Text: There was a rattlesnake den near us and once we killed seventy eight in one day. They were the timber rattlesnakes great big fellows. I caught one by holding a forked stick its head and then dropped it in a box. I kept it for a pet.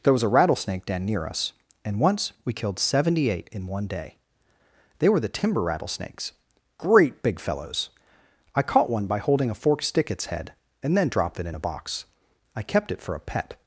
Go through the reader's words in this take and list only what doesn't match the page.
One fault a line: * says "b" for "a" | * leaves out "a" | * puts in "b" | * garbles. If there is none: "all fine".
all fine